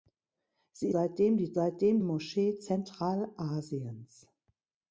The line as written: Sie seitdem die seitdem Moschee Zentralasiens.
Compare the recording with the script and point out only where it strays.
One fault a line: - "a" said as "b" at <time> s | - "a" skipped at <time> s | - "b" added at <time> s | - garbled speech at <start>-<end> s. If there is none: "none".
none